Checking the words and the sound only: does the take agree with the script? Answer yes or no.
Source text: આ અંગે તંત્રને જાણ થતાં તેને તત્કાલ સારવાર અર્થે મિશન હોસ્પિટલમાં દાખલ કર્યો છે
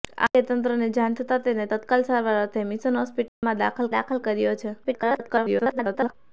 no